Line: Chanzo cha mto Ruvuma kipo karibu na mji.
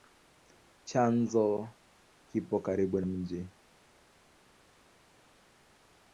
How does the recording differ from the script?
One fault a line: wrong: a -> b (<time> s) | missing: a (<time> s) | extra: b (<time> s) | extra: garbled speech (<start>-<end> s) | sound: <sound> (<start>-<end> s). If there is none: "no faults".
missing: cha mto Ruvuma (1.7 s)
missing: na (3.0 s)